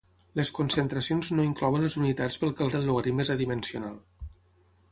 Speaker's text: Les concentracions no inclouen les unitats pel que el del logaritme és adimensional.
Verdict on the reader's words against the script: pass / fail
pass